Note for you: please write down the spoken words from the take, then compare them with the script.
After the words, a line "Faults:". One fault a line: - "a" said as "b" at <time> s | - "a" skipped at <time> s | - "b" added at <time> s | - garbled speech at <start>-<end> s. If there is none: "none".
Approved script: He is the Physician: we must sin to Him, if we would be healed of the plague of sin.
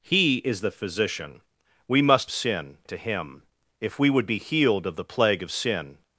He is the Physician: we must sin to Him, if we would be healed of the plague of sin.
Faults:
none